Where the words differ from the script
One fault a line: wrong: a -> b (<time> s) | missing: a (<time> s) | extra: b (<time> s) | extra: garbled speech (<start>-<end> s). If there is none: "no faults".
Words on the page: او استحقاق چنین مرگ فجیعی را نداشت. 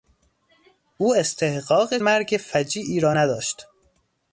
missing: چنین (2.0 s)